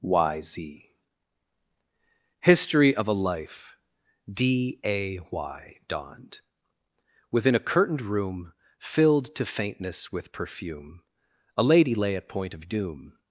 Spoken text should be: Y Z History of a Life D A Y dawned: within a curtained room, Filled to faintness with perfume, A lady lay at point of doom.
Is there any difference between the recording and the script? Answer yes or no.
no